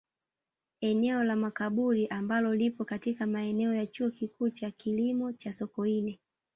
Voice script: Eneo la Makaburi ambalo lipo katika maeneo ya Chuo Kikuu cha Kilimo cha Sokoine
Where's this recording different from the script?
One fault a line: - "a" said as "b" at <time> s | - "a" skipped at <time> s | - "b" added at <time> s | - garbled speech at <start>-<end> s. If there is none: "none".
none